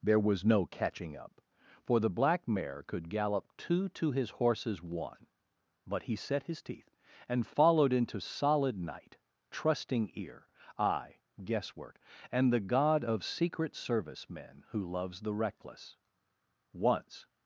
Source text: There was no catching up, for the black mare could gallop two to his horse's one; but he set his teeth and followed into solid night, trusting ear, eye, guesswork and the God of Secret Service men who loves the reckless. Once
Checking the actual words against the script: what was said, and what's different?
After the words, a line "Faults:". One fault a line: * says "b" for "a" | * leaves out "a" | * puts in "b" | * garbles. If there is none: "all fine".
There was no catching up, for the black mare could gallop two to his horse's one; but he set his teeth and followed into solid night, trusting ear, eye, guesswork and the God of Secret Service men who loves the reckless. Once
Faults:
all fine